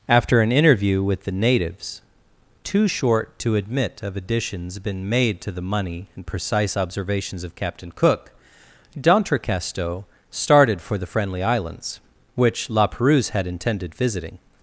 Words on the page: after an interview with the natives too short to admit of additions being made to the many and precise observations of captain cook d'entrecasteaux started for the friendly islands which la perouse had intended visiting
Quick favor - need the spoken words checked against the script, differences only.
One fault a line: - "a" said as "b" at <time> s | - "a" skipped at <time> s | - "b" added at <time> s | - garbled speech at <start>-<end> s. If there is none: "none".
- "being" said as "been" at 4.8 s
- "many" said as "money" at 5.6 s